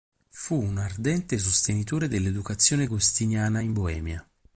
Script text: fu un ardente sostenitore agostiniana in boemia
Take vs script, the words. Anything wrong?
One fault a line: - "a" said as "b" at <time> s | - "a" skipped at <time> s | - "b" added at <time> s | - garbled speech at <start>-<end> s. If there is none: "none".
- "dell'educazione" added at 2.1 s